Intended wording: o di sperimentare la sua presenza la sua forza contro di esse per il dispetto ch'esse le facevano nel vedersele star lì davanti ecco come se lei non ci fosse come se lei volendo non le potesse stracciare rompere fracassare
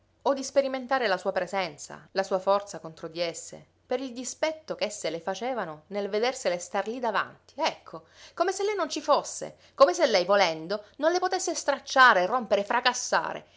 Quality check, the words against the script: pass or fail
pass